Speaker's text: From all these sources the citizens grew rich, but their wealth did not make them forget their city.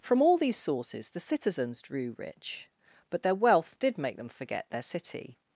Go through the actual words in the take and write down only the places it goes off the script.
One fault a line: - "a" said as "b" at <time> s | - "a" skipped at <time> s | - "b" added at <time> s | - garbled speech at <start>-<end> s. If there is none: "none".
- "grew" said as "drew" at 1.8 s
- "not" skipped at 4.0 s